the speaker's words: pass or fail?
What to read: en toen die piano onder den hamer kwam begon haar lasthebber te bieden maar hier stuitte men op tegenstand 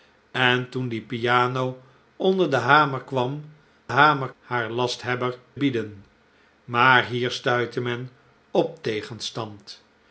fail